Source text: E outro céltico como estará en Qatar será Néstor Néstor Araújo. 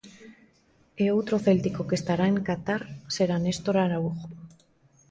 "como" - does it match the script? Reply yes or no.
no